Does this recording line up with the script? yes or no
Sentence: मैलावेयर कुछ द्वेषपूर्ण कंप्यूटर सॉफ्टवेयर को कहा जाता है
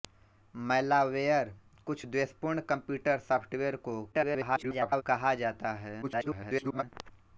no